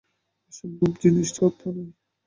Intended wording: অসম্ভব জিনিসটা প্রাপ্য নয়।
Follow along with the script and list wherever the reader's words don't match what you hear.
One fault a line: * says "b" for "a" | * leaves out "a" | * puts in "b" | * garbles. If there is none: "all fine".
all fine